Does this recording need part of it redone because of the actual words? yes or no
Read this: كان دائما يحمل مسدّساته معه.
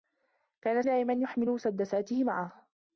no